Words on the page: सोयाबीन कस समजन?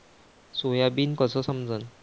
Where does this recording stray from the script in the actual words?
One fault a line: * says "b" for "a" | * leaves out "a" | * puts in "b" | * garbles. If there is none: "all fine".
all fine